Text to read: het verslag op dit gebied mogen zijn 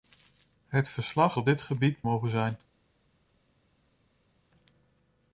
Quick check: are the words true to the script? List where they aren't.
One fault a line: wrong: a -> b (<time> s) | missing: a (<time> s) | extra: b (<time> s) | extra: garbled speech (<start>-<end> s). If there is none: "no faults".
no faults